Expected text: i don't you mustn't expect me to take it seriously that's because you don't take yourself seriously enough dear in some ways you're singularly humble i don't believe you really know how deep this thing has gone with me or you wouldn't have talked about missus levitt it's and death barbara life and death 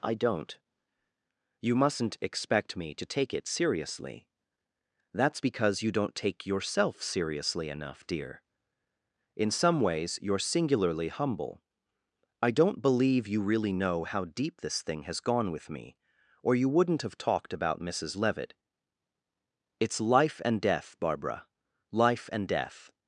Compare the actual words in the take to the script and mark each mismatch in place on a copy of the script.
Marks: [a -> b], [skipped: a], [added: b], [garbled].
i don't you mustn't expect me to take it seriously that's because you don't take yourself seriously enough dear in some ways you're singularly humble i don't believe you really know how deep this thing has gone with me or you wouldn't have talked about missus levitt it's [added: life] and death barbara life and death